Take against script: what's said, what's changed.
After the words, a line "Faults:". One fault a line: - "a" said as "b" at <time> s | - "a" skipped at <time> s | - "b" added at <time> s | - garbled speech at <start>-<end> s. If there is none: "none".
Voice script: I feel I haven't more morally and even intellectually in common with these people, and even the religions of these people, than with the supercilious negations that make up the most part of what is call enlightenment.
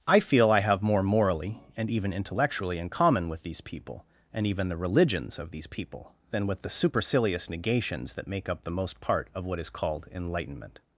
I feel I have more morally and even intellectually in common with these people, and even the religions of these people, than with the supercilious negations that make up the most part of what is called enlightenment.
Faults:
- "haven't" said as "have" at 0.6 s
- "call" said as "called" at 9.7 s